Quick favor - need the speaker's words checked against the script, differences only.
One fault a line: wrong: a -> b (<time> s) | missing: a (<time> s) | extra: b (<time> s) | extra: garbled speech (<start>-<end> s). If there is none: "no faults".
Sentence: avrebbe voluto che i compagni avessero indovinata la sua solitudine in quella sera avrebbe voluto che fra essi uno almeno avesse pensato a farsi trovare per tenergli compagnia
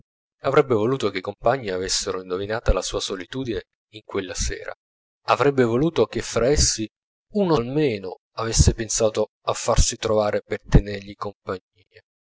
no faults